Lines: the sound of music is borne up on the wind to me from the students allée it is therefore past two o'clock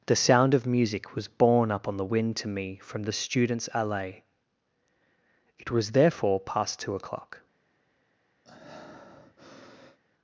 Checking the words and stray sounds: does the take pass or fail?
fail